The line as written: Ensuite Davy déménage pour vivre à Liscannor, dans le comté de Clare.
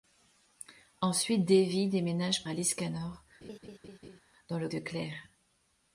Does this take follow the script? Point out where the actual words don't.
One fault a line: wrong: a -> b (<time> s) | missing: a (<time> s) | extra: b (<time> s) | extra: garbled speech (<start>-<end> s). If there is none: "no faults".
missing: pour vivre (2.4 s)
missing: comté (4.7 s)